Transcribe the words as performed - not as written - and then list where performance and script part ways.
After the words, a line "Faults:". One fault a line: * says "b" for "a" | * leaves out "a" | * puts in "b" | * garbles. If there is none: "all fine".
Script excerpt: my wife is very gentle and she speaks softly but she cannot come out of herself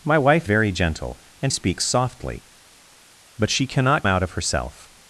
my wife very gentle and speaks softly but she cannot out of herself
Faults:
* leaves out "is"
* leaves out "she"
* leaves out "come"